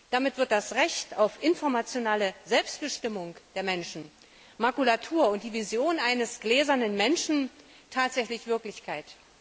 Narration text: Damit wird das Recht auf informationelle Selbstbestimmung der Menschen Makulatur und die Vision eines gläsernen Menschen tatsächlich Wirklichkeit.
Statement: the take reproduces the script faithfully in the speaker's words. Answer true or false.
true